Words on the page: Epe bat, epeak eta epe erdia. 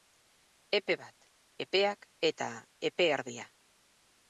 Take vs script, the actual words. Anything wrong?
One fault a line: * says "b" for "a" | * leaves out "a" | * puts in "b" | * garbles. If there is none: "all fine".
all fine